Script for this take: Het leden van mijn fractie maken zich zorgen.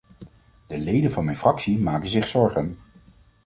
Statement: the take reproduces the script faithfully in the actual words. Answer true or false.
false